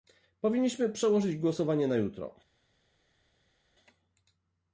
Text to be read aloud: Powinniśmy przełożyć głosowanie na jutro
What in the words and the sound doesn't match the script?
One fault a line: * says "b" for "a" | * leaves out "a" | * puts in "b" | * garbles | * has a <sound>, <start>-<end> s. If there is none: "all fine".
all fine